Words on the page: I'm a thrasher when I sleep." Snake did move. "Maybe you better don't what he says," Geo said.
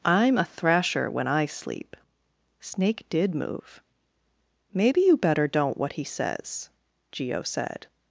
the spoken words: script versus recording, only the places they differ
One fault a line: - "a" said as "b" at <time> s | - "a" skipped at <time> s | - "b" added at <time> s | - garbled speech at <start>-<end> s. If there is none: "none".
none